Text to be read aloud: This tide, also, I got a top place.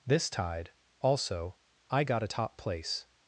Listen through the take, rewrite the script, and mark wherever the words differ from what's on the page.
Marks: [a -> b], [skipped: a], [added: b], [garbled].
This tide, also, I got a top place.